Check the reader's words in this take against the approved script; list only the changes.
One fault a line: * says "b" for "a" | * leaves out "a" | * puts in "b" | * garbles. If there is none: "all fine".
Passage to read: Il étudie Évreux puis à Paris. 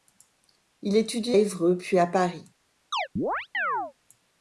all fine